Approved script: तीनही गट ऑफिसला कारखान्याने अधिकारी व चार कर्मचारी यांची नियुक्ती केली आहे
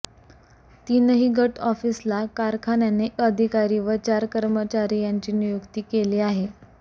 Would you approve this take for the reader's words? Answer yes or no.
yes